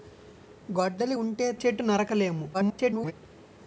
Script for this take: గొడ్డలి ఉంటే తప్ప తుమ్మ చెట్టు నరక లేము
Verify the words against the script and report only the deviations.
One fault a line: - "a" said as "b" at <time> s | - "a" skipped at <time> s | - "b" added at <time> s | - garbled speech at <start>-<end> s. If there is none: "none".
- "తప్ప తుమ్మ" skipped at 1.5 s
- garbled speech at 2.5-3.1 s